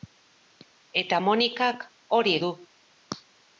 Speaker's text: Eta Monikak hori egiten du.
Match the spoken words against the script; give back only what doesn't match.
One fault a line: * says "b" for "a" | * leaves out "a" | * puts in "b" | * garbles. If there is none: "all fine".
* leaves out "egiten"